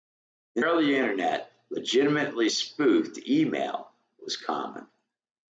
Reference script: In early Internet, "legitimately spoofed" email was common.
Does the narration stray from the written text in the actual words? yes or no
no